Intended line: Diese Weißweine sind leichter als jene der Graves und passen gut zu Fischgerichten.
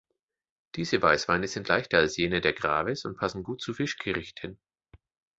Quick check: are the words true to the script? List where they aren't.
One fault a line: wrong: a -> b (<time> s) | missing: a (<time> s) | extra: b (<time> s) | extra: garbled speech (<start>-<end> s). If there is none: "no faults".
no faults